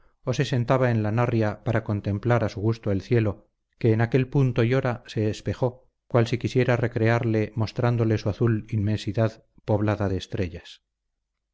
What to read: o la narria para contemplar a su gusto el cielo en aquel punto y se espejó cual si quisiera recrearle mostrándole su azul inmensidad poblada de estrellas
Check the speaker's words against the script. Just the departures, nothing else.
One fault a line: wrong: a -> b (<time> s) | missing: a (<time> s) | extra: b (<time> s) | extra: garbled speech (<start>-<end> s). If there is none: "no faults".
extra: se sentaba en (0.3 s)
extra: que (3.8 s)
extra: hora (4.7 s)